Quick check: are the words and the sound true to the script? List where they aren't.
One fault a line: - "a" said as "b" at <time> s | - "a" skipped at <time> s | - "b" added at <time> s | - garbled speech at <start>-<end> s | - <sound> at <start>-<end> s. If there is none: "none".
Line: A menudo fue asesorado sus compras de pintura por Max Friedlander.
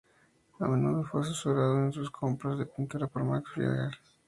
- "en" added at 1.8 s